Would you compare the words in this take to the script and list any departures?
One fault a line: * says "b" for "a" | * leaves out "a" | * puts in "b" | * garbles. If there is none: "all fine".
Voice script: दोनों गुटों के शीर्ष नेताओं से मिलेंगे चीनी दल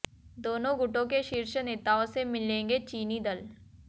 all fine